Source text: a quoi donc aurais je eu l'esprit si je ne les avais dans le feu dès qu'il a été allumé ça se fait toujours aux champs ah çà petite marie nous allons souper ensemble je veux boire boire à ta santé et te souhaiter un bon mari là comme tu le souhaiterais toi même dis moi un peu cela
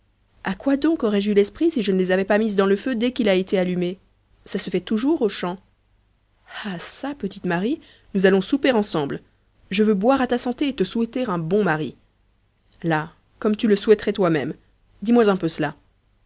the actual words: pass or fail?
fail